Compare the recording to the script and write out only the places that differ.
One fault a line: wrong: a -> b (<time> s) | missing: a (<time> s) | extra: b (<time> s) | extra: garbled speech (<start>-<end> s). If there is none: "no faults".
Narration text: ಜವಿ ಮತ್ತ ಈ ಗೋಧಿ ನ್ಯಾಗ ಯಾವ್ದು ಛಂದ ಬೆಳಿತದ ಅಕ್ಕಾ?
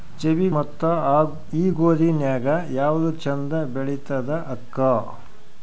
no faults